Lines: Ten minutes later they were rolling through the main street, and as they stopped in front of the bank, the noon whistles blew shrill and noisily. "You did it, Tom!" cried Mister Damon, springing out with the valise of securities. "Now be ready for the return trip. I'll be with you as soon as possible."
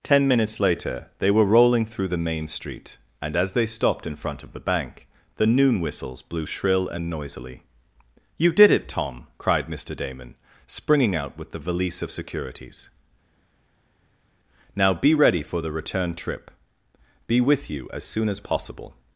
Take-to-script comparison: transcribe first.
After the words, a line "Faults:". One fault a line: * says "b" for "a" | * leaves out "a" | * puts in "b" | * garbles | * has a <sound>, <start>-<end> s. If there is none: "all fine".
Ten minutes later they were rolling through the main street, and as they stopped in front of the bank, the noon whistles blew shrill and noisily. "You did it, Tom!" cried Mister Damon, springing out with the valise of securities. "Now be ready for the return trip. be with you as soon as possible."
Faults:
* leaves out "I'll"